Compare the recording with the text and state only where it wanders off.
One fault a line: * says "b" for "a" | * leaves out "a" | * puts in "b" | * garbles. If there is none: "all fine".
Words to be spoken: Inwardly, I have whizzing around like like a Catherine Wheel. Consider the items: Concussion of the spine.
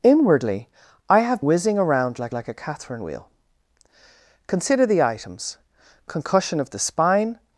all fine